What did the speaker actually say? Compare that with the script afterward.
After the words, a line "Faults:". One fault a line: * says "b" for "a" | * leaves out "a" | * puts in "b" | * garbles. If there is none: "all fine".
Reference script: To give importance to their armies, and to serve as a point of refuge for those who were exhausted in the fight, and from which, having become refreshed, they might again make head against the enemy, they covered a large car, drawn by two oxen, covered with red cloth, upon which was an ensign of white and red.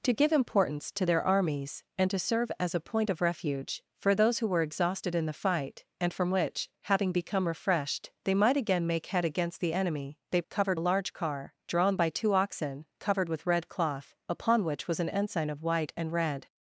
To give importance to their armies, and to serve as a point of refuge for those who were exhausted in the fight, and from which, having become refreshed, they might again make head against the enemy, they covered a large car, drawn by two oxen, covered with red cloth, upon which was an ensign of white and red.
Faults:
all fine